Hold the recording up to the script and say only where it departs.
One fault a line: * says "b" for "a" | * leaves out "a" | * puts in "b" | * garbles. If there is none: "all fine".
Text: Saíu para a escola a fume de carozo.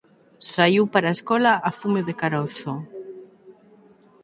all fine